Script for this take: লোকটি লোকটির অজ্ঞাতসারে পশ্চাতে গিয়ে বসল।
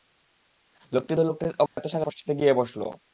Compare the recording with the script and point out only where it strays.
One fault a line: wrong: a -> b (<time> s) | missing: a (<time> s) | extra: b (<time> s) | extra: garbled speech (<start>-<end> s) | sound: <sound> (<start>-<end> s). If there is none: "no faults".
sound: dropout (1.7-1.8 s)